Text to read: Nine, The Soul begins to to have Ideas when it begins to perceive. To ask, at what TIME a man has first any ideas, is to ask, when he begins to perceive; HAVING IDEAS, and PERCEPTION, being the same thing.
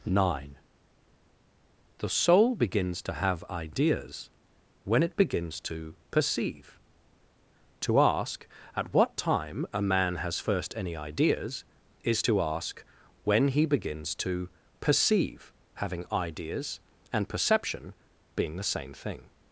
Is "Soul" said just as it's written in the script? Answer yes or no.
yes